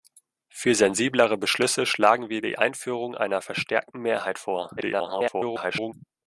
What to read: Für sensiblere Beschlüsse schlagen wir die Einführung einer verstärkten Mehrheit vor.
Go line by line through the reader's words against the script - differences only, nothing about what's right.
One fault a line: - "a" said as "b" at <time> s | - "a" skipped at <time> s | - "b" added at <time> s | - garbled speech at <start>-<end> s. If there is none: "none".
- garbled speech at 4.8-5.9 s